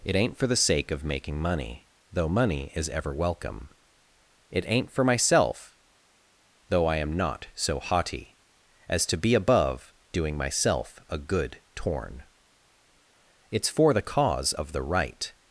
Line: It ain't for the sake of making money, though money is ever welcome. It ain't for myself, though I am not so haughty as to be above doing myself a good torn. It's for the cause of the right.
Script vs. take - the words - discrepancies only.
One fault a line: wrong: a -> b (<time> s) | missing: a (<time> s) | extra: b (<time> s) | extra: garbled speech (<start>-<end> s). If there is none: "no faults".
no faults